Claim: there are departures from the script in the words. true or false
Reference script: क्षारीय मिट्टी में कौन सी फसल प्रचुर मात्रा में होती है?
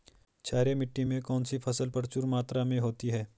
false